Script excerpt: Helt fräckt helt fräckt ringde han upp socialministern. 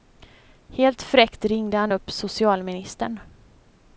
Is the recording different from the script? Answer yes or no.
yes